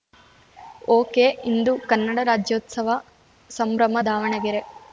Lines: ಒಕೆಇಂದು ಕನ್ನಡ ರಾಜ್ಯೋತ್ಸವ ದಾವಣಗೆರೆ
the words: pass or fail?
fail